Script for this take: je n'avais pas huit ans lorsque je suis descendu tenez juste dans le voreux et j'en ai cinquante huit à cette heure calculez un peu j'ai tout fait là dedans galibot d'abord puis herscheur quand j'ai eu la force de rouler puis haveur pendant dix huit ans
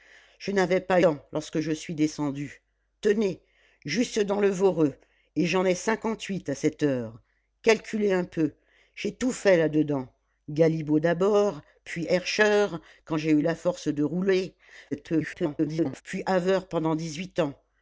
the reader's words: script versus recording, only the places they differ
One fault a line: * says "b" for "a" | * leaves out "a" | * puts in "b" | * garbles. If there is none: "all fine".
* leaves out "huit"
* garbles